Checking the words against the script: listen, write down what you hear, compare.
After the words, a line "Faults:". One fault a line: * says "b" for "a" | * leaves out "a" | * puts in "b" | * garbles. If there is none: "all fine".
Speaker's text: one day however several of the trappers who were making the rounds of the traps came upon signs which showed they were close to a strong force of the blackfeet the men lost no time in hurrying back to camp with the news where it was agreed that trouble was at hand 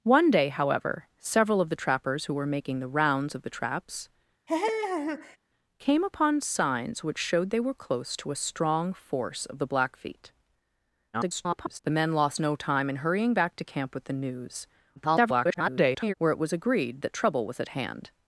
one day however several of the trappers who were making the rounds of the traps came upon signs which showed they were close to a strong force of the blackfeet [garbled] the men lost no time in hurrying back to camp with the news [garbled] where it was agreed that trouble was at hand
Faults:
* garbles
* garbles